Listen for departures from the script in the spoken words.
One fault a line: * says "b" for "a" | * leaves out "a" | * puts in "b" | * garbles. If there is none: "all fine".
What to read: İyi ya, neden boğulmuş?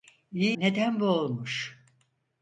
* leaves out "ya"